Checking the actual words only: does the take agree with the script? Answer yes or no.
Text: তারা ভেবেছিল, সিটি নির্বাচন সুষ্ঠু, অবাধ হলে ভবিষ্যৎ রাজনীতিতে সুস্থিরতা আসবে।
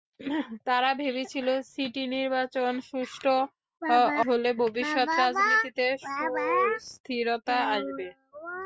no